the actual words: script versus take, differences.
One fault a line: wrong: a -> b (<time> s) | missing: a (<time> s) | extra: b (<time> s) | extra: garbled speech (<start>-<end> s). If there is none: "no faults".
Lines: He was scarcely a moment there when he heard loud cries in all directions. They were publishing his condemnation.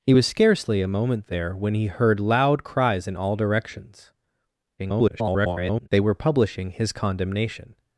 extra: garbled speech (4.8-5.9 s)